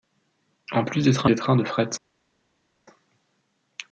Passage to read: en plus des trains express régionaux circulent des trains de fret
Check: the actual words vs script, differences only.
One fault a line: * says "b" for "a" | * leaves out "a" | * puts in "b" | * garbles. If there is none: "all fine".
* leaves out "express régionaux circulent"